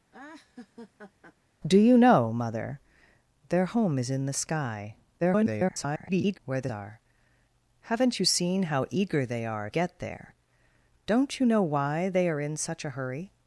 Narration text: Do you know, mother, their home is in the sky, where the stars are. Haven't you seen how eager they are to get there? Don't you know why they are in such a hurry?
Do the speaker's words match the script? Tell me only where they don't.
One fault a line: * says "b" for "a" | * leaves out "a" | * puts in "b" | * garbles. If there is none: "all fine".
* garbles
* leaves out "stars"
* leaves out "to"